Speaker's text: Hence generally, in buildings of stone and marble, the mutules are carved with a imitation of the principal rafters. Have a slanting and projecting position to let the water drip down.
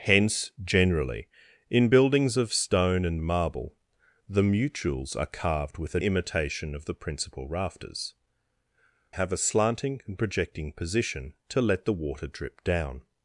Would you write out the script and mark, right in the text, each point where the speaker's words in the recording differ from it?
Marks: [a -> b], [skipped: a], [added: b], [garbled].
Hence generally, in buildings of stone and marble, the mutules are carved with a imitation of the principal rafters. Have a slanting and projecting position to let the water drip down.